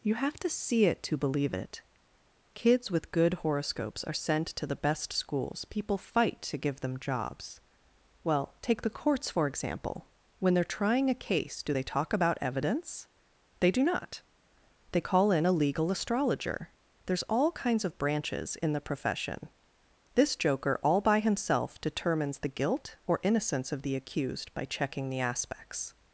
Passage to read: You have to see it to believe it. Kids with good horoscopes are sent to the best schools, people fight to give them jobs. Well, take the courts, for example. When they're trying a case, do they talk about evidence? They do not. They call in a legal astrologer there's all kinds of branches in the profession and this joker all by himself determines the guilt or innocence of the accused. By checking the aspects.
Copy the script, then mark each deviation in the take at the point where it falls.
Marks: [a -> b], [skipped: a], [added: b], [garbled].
You have to see it to believe it. Kids with good horoscopes are sent to the best schools, people fight to give them jobs. Well, take the courts, for example. When they're trying a case, do they talk about evidence? They do not. They call in a legal astrologer there's all kinds of branches in the profession [skipped: and] this joker all by himself determines the guilt or innocence of the accused. By checking the aspects.